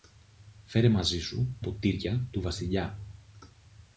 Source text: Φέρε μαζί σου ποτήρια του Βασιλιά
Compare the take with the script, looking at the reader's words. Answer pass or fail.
pass